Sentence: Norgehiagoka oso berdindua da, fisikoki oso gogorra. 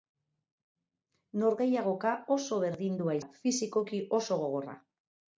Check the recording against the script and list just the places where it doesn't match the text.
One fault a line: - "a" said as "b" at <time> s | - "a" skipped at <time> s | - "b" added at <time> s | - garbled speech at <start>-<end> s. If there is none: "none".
none